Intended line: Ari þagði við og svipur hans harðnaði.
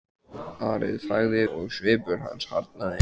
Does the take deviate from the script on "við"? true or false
true